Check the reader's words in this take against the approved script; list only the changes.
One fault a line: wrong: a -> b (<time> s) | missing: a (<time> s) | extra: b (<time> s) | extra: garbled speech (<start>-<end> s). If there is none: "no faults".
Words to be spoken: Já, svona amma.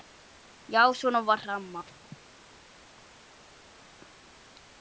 extra: var (1.2 s)